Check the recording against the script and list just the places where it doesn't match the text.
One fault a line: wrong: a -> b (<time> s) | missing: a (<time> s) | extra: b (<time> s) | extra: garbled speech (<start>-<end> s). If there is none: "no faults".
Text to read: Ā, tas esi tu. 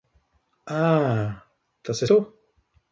missing: esi (2.0 s)